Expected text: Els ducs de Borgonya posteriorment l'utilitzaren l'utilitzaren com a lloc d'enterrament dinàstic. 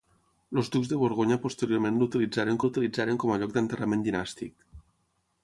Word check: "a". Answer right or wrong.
right